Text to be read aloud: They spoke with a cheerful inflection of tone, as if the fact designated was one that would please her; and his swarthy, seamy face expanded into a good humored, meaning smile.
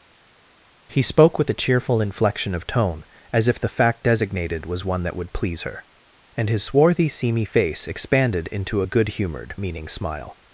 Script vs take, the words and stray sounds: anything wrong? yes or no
yes